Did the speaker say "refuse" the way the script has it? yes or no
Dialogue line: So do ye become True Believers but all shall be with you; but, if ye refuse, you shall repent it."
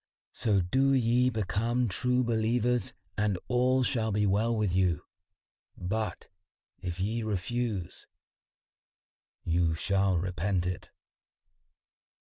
yes